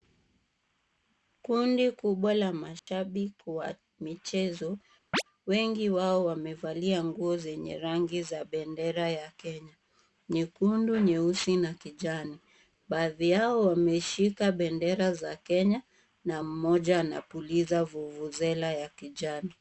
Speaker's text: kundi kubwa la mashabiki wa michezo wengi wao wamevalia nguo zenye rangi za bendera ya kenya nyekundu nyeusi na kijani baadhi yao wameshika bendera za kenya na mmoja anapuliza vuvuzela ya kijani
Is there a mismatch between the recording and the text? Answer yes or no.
no